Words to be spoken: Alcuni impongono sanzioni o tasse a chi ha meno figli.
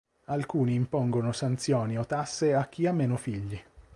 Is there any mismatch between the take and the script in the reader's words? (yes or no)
no